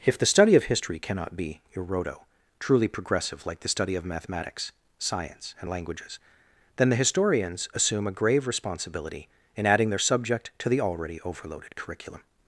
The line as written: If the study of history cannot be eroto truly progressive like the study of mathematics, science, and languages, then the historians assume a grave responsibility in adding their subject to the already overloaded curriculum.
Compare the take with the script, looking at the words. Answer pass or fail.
pass